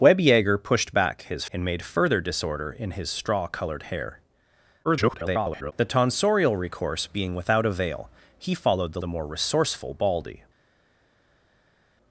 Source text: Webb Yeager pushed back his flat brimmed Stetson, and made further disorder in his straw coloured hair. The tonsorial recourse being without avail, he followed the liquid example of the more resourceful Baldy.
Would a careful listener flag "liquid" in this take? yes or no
yes